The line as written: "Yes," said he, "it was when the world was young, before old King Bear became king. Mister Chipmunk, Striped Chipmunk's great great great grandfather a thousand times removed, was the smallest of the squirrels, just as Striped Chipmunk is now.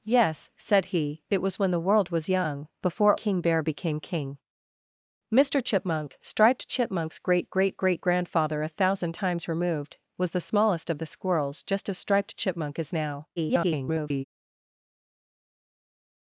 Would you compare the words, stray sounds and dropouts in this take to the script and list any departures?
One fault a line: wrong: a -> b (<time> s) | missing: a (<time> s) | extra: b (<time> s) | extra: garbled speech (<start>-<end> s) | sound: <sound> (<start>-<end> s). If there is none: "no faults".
missing: old (3.2 s)
extra: garbled speech (13.4-14.2 s)